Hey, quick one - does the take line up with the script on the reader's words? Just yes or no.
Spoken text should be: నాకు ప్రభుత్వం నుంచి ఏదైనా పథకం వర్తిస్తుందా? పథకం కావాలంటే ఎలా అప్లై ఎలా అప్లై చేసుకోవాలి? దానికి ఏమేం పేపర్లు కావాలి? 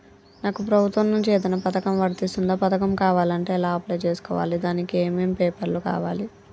no